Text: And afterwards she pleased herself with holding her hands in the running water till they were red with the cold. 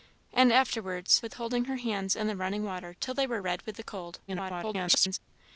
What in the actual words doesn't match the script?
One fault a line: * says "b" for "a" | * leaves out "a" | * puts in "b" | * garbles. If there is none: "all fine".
* leaves out "she pleased herself"
* garbles